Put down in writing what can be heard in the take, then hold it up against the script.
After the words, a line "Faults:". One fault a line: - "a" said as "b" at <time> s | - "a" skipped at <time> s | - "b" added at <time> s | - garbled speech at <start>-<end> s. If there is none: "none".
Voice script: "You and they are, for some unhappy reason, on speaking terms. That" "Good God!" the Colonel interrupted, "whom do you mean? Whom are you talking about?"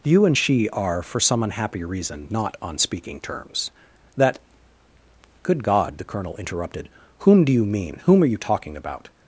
"You and she are, for some unhappy reason, not on speaking terms. That" "Good God!" the Colonel interrupted, "whom do you mean? Whom are you talking about?"
Faults:
- "they" said as "she" at 0.4 s
- "not" added at 2.3 s